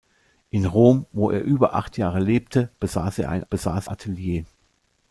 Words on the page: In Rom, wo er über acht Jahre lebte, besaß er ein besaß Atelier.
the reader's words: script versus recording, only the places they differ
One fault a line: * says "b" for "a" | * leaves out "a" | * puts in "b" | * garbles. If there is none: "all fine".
all fine